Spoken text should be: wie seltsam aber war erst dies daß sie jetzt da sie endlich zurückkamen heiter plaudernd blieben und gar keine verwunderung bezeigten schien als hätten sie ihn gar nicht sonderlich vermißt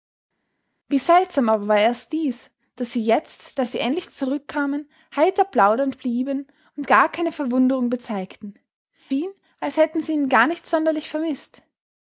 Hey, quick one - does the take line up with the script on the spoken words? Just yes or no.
yes